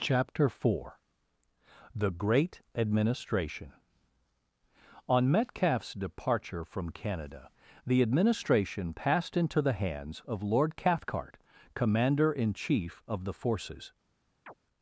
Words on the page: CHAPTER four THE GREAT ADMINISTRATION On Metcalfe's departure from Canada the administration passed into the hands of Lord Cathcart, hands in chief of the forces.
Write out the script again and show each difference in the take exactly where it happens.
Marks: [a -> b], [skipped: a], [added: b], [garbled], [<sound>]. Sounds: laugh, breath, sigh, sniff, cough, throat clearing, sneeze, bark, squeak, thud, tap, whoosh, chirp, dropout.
CHAPTER four THE GREAT ADMINISTRATION On Metcalfe's departure from Canada the administration passed into the hands of Lord Cathcart, [hands -> commander] in chief of the forces. [chirp]